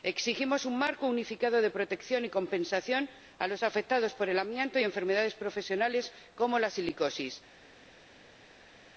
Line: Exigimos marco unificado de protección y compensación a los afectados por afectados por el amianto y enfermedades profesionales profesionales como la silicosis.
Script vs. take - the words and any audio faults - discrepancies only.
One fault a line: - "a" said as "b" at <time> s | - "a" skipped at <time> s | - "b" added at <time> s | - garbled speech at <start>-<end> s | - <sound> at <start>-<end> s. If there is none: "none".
- "un" added at 0.7 s
- "afectados por" skipped at 4.3 s
- "profesionales" skipped at 6.1 s